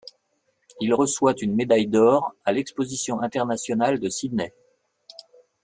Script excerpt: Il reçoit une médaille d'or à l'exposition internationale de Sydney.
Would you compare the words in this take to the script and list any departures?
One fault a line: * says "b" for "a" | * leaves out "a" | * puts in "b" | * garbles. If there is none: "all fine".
all fine